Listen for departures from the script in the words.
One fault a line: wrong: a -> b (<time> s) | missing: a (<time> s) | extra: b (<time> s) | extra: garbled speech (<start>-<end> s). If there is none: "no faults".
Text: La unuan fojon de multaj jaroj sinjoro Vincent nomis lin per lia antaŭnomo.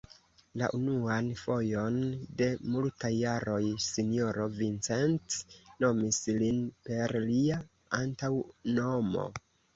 no faults